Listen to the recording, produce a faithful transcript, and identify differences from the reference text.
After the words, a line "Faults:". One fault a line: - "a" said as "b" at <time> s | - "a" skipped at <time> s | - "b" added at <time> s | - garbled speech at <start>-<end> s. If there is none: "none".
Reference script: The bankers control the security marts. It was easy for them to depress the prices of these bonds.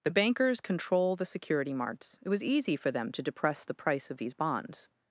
The bankers control the security marts. It was easy for them to depress the price of these bonds.
Faults:
- "prices" said as "price" at 3.8 s